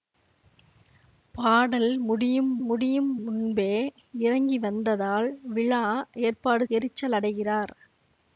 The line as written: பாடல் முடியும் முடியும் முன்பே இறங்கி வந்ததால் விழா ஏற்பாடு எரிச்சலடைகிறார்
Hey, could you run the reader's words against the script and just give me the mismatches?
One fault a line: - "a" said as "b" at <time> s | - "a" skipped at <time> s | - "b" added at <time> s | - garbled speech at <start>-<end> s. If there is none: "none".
none